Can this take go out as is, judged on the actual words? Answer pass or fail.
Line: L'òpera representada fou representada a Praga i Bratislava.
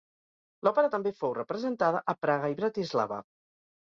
fail